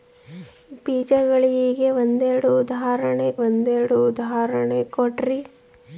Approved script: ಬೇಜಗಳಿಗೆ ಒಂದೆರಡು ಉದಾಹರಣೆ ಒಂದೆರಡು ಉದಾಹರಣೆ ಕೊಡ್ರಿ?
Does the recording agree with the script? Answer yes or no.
yes